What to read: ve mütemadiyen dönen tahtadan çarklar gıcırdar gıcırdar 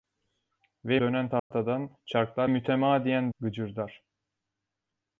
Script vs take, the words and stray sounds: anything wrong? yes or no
yes